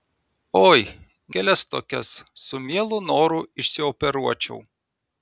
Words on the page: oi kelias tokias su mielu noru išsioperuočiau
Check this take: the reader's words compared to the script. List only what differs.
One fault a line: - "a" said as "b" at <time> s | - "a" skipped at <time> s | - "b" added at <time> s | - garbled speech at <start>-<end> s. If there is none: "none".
none